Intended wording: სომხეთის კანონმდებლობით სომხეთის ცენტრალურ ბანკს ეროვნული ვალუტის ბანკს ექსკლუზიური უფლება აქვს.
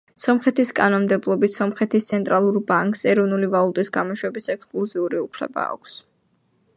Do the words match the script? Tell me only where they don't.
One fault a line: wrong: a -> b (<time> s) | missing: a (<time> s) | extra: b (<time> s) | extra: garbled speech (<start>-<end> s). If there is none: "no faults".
wrong: ბანკს -> გამოშვების (4.0 s)